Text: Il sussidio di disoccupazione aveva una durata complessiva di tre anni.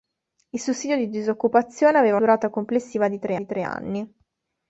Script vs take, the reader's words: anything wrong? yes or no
yes